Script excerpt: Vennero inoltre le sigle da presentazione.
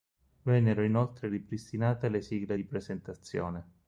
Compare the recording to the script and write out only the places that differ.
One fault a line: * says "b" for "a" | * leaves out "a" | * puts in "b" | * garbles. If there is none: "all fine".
* puts in "ripristinate"
* says "di" for "da"